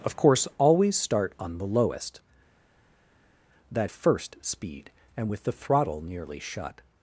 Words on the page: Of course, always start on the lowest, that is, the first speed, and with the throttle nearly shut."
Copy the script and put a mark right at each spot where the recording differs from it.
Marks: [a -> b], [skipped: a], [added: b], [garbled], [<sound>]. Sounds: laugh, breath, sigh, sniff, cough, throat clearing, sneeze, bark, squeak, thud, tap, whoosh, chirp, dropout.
Of course, always start on the lowest, that [skipped: is, the] first speed, and with the throttle nearly shut."